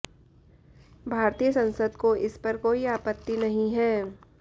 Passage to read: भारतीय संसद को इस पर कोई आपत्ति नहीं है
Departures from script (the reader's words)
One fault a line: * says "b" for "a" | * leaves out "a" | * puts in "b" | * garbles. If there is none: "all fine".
all fine